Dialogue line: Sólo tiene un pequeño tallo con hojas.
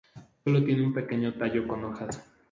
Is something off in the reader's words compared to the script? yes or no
no